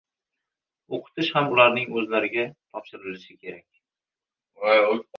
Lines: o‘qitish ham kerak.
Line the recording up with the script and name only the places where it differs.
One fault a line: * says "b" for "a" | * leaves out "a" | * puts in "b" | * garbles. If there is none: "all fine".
* puts in "ularning o‘zlariga topshirilishi"